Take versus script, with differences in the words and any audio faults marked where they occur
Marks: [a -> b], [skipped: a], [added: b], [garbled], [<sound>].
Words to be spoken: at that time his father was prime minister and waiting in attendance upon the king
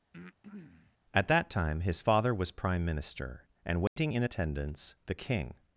[breath] at that time his father was prime minister and waiting [dropout] in attendance [skipped: upon] the king